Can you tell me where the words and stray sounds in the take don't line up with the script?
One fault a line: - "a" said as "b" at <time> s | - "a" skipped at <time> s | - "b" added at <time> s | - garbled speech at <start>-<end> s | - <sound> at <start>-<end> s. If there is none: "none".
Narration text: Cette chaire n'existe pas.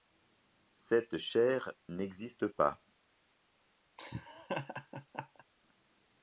- laugh at 4.0-5.4 s